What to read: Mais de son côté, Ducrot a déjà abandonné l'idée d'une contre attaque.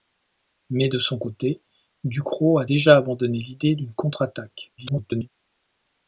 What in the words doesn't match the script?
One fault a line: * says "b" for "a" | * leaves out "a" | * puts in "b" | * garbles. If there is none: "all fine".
* garbles